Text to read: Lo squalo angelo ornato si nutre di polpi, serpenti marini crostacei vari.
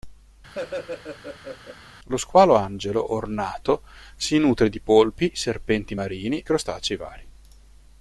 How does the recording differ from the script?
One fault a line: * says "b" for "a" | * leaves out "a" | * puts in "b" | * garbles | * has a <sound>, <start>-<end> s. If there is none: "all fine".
* has a laugh, 0.5-1.8 s